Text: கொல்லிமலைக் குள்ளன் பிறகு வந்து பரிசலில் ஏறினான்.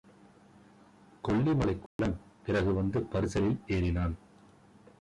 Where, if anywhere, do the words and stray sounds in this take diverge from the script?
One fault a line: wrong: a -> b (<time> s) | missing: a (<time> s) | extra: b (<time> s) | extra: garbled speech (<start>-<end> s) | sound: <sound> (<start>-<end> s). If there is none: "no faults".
sound: dropout (1.9-2.0 s)